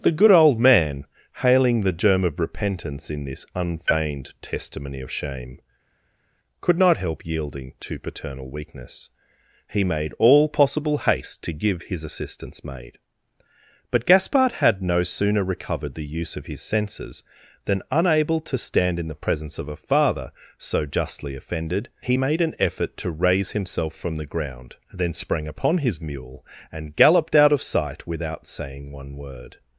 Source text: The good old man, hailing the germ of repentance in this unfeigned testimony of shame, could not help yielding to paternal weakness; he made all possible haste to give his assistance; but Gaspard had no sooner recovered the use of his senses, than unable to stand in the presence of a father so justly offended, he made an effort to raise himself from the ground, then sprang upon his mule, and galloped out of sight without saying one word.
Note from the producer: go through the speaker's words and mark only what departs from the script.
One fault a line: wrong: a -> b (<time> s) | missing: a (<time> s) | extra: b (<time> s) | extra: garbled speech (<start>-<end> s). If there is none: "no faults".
extra: maid (12.6 s)